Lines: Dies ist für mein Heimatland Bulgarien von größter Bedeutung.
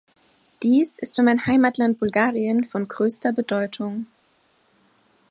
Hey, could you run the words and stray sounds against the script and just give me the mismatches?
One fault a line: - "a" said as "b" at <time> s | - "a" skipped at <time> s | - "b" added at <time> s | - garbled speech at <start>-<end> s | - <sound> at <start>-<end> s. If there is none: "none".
none